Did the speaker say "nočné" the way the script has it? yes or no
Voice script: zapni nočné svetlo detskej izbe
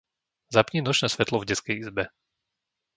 yes